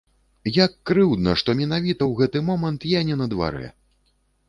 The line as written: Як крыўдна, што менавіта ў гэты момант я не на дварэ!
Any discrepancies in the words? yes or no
no